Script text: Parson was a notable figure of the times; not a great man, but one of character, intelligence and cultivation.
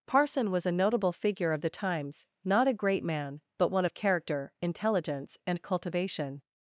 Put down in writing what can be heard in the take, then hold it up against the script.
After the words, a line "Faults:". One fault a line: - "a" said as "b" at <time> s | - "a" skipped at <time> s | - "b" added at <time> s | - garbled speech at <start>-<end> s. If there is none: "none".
Parson was a notable figure of the times; not a great man, but one of character, intelligence and cultivation.
Faults:
none